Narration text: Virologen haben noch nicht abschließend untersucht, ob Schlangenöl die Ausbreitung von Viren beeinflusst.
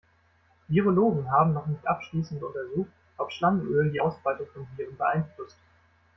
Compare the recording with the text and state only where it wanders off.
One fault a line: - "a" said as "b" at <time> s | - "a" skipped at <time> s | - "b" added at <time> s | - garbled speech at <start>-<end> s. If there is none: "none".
none